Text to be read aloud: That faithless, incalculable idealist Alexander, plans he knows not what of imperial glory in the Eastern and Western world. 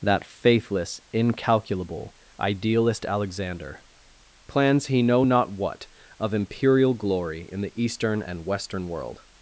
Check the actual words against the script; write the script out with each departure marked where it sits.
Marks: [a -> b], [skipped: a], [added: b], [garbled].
That faithless, incalculable idealist Alexander, plans he [knows -> know] not what of imperial glory in the Eastern and Western world.